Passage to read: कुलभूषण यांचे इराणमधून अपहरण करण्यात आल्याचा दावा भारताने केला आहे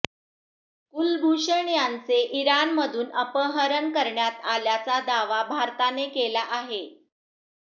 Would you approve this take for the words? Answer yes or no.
yes